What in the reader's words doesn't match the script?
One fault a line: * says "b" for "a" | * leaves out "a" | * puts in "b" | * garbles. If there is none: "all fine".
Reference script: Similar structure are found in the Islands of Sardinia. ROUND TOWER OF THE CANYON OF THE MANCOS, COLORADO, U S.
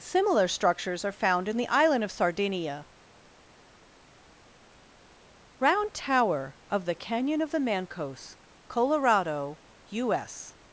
* says "structures" for "structure"
* says "Island" for "Islands"